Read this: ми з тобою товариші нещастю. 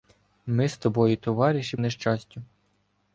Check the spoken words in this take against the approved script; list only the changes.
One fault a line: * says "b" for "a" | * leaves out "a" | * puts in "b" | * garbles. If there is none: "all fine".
all fine